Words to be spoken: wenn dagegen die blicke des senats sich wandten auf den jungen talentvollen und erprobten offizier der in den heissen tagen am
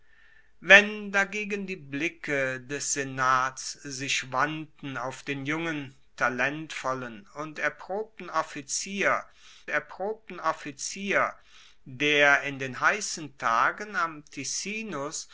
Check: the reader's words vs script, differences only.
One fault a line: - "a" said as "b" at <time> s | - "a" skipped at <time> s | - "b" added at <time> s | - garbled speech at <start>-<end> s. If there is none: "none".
- "erprobten offizier" added at 9.7 s